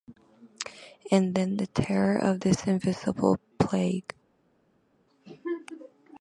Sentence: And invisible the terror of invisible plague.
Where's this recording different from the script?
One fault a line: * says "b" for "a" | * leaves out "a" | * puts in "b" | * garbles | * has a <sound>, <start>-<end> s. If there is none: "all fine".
* says "then" for "invisible"
* puts in "this"